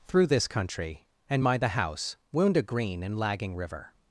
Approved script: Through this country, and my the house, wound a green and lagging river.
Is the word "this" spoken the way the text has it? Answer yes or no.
yes